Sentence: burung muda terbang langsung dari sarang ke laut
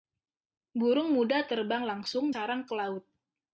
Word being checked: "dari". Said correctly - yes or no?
no